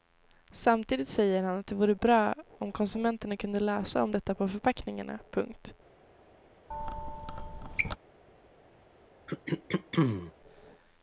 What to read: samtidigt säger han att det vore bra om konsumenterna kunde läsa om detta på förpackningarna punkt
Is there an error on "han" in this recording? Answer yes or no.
no